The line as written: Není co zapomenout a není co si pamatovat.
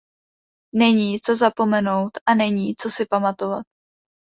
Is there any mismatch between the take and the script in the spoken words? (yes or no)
no